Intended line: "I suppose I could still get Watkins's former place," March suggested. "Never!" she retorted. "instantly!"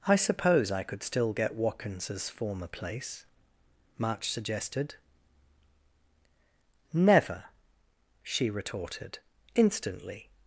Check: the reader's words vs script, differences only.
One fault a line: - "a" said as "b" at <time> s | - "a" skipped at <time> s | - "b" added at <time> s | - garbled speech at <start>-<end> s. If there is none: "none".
none